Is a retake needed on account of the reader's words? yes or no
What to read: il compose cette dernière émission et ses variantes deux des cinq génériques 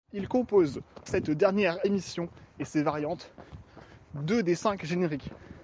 no